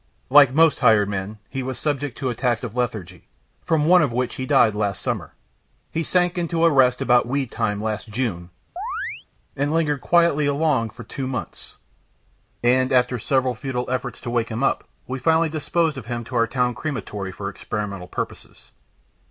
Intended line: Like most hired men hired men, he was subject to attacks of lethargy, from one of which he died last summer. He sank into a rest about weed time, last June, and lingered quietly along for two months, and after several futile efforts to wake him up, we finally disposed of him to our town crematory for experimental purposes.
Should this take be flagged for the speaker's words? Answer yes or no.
yes